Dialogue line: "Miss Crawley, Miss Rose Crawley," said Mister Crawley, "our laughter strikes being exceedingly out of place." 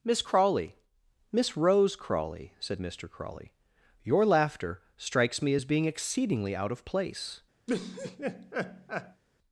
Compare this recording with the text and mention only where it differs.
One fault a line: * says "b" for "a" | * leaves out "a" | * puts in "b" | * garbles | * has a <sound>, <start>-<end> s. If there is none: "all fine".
* says "your" for "our"
* puts in "me as"
* has a laugh, 7.7-9.2 s